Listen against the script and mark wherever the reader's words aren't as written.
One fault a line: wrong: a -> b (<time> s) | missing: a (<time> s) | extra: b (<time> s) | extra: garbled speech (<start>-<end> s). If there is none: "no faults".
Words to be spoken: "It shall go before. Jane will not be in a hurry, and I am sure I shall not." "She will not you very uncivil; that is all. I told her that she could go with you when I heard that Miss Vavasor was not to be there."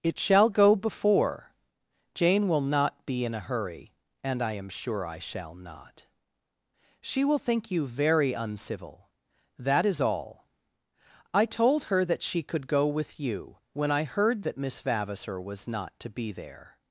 wrong: not -> think (7.4 s)